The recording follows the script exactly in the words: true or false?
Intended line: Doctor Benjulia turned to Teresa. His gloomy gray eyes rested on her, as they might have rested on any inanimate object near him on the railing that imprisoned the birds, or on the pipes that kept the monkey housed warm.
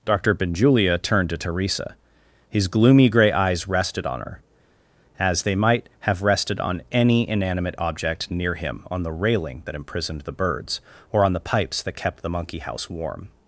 false